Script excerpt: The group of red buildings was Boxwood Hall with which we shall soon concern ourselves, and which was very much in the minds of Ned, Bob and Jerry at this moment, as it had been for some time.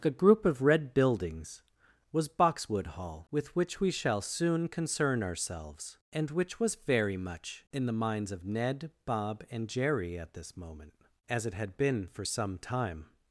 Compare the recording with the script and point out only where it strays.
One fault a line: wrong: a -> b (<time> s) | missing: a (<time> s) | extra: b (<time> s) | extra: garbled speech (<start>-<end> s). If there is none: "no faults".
wrong: The -> A (0.0 s)